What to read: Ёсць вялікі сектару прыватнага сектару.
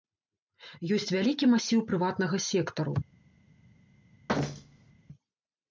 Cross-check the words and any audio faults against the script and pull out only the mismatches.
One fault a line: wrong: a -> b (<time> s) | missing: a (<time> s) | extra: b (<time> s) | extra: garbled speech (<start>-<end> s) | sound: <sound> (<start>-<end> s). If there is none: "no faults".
wrong: сектару -> масіў (1.5 s)
sound: thud (4.3-4.9 s)